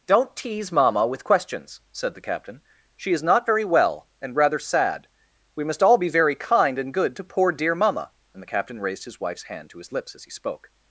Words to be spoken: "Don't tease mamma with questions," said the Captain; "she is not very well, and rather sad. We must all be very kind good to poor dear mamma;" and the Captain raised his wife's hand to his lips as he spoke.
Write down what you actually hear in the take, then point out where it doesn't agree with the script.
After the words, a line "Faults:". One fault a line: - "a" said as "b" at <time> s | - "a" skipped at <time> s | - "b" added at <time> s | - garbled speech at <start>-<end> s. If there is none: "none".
"Don't tease mamma with questions," said the Captain; "she is not very well, and rather sad. We must all be very kind and good to poor dear mamma;" and the Captain raised his wife's hand to his lips as he spoke.
Faults:
- "and" added at 6.8 s